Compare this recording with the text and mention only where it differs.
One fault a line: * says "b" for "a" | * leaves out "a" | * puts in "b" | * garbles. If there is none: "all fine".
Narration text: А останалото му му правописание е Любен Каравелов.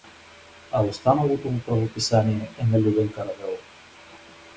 * leaves out "му"
* puts in "на"